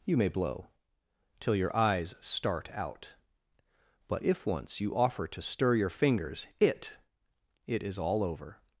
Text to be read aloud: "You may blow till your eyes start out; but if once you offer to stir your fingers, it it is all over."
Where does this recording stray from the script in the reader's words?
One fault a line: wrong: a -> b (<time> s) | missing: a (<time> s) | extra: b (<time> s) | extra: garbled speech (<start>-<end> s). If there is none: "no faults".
no faults